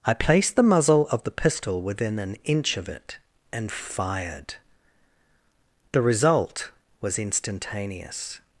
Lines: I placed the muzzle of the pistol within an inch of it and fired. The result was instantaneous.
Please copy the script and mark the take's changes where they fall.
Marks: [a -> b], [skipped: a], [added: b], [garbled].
I placed the muzzle of the pistol within an inch of it and fired. The result was instantaneous.